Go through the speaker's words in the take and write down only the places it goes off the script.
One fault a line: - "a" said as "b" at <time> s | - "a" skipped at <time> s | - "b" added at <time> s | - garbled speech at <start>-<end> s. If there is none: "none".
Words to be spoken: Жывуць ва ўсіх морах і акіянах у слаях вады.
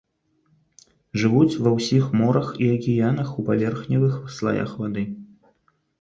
- "паверхневых" added at 3.5 s